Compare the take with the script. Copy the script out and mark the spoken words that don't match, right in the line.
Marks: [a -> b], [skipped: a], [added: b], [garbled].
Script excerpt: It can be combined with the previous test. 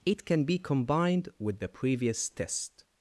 It can be combined with the previous test.